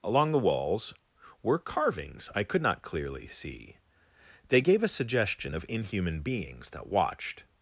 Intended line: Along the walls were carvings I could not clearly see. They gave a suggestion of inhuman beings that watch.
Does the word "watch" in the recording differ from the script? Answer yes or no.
yes